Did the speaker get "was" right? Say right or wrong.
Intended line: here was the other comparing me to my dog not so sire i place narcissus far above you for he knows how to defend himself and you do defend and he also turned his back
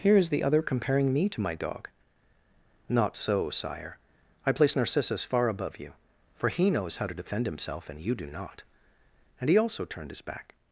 wrong